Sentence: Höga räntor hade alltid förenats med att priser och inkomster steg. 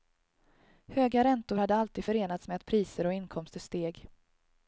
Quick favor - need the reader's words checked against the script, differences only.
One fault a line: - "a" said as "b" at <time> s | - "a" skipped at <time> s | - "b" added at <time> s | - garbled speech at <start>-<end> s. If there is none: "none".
none